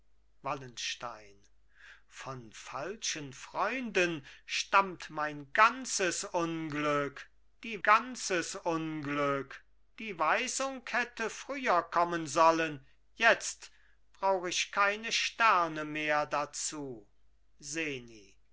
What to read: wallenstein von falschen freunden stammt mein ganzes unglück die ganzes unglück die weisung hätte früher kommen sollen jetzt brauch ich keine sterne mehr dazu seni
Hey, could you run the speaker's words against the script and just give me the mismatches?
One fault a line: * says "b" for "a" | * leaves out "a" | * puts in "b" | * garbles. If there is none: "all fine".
all fine